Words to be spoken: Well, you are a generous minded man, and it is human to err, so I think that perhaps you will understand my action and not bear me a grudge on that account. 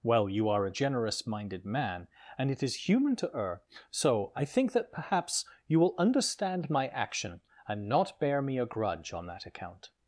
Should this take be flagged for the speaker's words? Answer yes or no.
no